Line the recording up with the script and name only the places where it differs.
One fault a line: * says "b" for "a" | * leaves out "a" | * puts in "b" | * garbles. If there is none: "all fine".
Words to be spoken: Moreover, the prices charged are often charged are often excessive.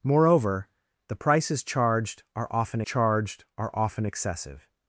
all fine